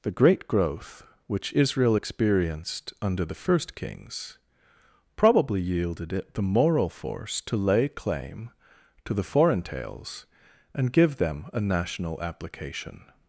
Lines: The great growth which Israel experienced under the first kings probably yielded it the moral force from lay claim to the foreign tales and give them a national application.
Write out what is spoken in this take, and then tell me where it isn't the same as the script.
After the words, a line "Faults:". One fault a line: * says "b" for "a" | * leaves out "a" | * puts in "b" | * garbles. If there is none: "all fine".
The great growth which Israel experienced under the first kings probably yielded it the moral force to lay claim to the foreign tales and give them a national application.
Faults:
* says "to" for "from"